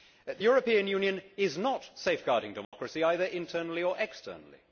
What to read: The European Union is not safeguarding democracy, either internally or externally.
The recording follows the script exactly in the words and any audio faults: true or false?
false